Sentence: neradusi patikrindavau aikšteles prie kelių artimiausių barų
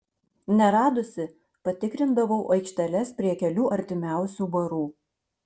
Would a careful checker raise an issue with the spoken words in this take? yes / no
no